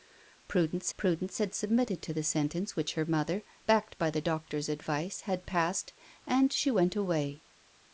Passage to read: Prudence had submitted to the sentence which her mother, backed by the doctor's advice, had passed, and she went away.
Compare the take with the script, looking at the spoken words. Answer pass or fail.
fail